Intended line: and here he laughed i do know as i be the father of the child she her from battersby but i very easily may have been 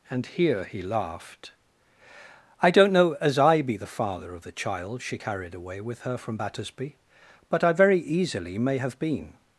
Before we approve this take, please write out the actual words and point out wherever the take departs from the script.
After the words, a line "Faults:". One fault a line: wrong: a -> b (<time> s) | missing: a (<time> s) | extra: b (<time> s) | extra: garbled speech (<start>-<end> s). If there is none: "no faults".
and here he laughed i don't know as i be the father of the child she carried away with her from battersby but i very easily may have been
Faults:
wrong: do -> don't (2.7 s)
extra: carried away with (5.1 s)